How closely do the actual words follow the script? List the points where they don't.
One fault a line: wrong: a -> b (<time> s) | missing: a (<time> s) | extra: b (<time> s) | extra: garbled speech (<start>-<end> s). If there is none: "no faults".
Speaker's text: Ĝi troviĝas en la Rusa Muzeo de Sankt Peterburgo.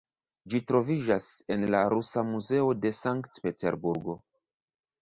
no faults